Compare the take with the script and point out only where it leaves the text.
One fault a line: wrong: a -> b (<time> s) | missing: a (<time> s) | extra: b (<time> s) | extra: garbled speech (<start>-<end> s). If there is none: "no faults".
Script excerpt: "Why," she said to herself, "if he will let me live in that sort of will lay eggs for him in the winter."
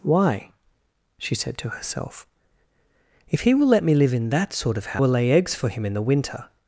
no faults